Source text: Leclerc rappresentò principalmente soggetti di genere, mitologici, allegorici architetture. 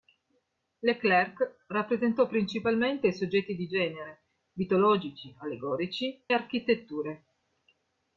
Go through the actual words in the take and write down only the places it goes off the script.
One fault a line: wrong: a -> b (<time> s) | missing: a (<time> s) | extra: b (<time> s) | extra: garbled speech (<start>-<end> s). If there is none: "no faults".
no faults